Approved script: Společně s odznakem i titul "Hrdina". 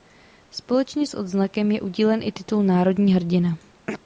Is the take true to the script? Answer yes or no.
no